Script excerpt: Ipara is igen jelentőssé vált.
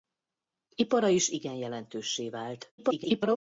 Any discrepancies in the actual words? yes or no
yes